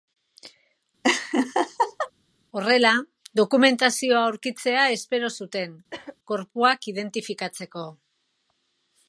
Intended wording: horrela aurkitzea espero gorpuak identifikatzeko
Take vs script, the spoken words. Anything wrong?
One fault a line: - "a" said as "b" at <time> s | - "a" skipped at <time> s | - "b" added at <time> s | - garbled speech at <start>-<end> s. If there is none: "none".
- "dokumentazioa" added at 3.4 s
- "zuten" added at 5.4 s